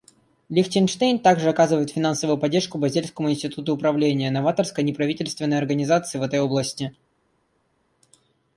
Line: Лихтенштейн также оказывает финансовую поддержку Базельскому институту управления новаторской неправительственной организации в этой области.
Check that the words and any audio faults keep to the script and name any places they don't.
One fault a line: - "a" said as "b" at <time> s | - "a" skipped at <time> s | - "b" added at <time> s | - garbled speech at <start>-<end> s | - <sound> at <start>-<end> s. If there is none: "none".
none